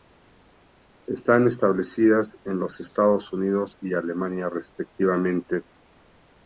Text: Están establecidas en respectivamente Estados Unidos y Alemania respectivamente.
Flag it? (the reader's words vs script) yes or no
yes